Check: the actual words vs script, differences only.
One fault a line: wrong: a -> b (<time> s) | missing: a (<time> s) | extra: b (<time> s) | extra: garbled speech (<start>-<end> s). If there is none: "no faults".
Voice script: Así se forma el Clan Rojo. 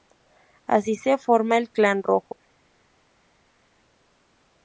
no faults